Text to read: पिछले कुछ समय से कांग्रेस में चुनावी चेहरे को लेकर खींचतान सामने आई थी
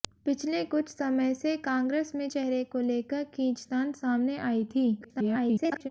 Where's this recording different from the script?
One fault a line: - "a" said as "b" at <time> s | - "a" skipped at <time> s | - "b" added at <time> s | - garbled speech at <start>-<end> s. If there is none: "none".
- "चुनावी" skipped at 2.3 s
- garbled speech at 5.0-5.9 s